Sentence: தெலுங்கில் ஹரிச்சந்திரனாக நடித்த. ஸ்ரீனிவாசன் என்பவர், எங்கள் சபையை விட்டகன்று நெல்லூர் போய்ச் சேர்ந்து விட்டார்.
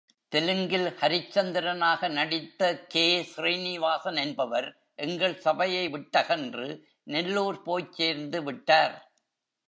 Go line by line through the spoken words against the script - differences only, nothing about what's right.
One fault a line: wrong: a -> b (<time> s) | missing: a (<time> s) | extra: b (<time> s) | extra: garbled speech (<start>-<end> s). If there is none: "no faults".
extra: கே (2.9 s)